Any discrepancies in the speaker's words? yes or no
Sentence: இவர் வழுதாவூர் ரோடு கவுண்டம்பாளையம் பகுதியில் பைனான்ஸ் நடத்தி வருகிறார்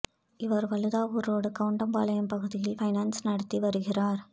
no